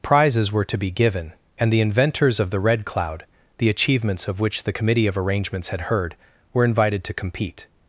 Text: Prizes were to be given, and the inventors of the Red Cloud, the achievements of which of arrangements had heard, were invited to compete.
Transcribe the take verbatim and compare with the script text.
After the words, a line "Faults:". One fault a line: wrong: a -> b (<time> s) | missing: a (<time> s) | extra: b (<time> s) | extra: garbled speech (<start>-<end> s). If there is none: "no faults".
Prizes were to be given, and the inventors of the Red Cloud, the achievements of which the committee of arrangements had heard, were invited to compete.
Faults:
extra: the committee (4.6 s)